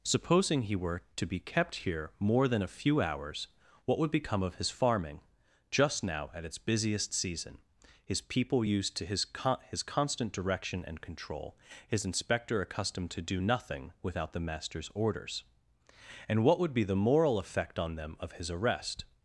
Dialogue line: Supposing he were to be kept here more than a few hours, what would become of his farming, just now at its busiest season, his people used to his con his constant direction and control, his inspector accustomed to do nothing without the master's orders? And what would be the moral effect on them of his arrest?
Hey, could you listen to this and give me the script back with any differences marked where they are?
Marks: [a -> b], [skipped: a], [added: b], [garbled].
Supposing he were to be kept here more than a few hours, what would become of his farming, just now at its busiest season, his people used to his con his constant direction and control, his inspector accustomed to do nothing without the master's orders? And what would be the moral effect on them of his arrest?